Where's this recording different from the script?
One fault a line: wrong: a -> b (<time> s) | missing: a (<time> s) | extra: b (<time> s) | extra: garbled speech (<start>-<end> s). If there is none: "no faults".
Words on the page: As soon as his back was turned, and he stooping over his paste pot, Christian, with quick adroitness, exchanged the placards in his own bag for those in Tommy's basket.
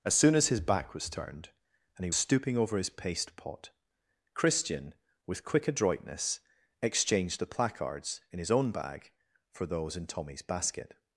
no faults